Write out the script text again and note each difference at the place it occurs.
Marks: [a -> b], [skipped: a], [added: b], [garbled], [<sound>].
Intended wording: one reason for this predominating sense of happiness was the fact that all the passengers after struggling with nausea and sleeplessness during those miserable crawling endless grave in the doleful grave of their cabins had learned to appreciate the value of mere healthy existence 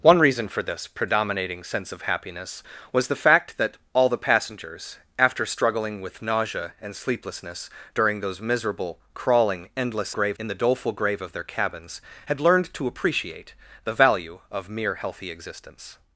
one reason for this predominating sense of happiness was the fact that all the passengers after struggling with nausea and sleeplessness during those miserable crawling endless grave in the doleful grave of their cabins had learned to appreciate the value of mere healthy existence